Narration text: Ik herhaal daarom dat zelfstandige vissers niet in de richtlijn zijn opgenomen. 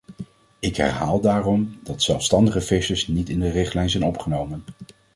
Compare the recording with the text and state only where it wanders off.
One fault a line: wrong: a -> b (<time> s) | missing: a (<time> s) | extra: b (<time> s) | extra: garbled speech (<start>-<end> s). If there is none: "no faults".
no faults